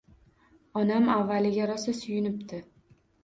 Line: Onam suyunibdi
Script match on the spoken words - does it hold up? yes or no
no